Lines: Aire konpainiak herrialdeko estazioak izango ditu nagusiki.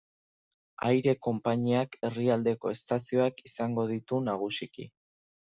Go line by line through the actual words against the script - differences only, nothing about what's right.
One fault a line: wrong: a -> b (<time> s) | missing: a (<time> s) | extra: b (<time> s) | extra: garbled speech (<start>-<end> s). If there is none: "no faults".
no faults